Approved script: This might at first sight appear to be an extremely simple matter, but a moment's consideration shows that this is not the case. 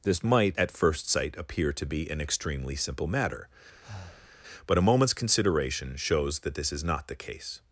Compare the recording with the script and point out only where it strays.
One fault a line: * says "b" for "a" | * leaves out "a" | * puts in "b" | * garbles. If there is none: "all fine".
all fine